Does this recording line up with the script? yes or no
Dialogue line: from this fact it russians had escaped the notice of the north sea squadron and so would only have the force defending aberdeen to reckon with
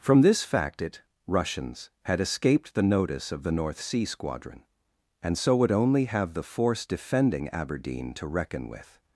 yes